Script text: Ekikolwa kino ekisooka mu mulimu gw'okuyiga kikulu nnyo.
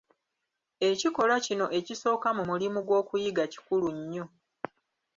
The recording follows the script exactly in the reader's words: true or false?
true